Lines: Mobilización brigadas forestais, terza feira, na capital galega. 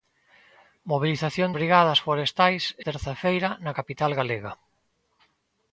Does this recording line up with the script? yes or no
yes